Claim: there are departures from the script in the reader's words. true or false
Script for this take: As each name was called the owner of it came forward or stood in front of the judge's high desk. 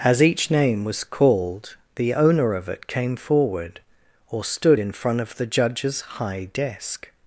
false